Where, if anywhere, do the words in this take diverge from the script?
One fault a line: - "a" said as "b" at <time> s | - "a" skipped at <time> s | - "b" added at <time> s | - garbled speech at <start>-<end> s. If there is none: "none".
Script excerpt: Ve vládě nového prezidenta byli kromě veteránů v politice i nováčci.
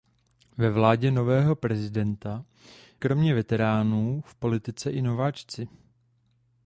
- "byli" skipped at 2.5 s